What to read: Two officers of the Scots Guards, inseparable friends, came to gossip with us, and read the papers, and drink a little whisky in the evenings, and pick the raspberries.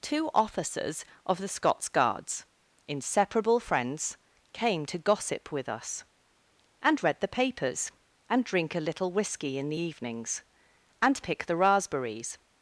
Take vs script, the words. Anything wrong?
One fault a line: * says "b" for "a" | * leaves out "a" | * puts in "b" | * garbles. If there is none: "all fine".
all fine